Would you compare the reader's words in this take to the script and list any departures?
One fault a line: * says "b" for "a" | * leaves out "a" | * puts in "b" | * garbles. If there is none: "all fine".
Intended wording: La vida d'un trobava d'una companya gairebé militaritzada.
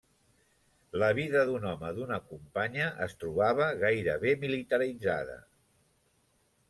* says "home" for "trobava"
* puts in "es trobava"